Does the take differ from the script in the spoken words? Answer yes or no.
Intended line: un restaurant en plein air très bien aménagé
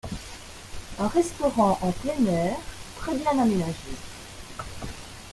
no